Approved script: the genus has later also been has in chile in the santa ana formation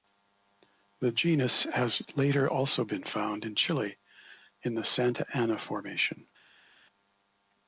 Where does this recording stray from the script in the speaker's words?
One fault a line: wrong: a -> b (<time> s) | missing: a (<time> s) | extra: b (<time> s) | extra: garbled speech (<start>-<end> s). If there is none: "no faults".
wrong: has -> found (3.0 s)